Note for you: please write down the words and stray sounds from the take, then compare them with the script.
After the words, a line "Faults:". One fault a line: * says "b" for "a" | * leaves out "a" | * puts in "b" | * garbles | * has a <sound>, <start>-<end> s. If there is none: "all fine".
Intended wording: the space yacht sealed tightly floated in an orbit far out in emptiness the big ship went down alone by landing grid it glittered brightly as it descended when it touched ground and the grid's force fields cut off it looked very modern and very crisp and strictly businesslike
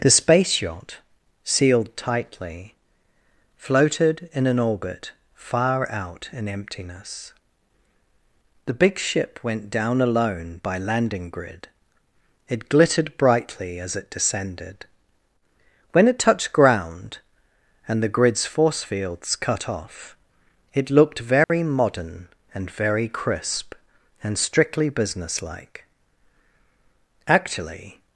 the space yacht sealed tightly floated in an orbit far out in emptiness the big ship went down alone by landing grid it glittered brightly as it descended when it touched ground and the grid's force fields cut off it looked very modern and very crisp and strictly businesslike actually
Faults:
* has a dropout, 21.4-21.5 s
* puts in "actually"